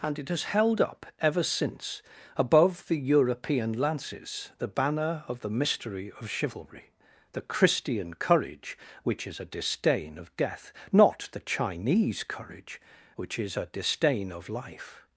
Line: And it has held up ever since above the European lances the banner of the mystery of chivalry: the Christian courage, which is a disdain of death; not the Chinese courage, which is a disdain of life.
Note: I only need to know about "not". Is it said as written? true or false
true